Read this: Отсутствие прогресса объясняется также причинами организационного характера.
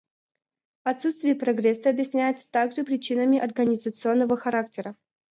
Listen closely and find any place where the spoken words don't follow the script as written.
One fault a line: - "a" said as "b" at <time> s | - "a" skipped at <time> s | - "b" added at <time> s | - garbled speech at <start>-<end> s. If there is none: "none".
none